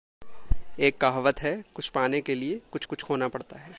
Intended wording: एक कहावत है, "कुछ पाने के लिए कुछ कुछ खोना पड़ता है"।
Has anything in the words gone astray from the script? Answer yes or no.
no